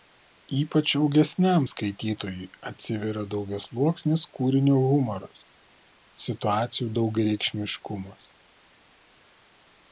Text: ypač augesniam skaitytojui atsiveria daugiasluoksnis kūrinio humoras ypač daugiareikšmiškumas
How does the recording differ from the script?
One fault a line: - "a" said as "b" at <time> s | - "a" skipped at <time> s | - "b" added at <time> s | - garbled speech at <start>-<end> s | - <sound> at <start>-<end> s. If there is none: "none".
- "ypač" said as "situacijų" at 6.3 s